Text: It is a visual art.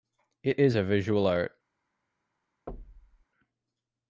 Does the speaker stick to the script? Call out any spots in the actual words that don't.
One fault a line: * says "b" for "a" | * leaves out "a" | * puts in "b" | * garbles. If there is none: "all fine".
all fine